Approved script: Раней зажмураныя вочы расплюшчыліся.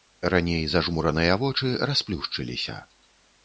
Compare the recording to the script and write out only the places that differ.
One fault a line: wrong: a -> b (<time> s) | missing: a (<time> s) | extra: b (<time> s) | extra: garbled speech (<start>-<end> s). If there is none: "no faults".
no faults